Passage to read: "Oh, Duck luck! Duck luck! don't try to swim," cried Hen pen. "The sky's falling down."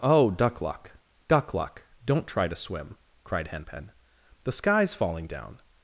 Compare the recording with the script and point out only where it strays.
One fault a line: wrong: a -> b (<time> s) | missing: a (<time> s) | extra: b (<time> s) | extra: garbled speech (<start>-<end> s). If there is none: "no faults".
no faults